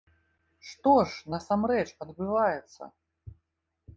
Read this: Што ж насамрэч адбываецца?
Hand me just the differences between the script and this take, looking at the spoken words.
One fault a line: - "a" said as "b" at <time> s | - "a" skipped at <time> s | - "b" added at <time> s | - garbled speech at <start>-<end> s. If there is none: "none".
none